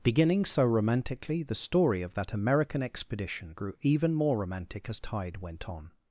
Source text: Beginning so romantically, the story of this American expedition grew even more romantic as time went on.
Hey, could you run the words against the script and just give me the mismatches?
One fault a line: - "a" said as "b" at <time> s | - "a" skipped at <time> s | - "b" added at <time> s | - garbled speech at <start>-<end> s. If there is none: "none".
- "this" said as "that" at 2.1 s
- "time" said as "tide" at 5.0 s